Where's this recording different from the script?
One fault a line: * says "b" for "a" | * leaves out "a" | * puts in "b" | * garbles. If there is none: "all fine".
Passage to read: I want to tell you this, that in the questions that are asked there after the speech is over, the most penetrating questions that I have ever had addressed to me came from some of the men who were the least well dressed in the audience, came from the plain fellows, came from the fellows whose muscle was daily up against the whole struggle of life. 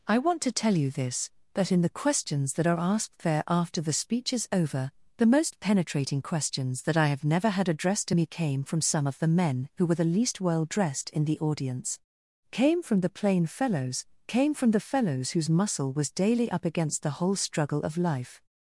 * says "never" for "ever"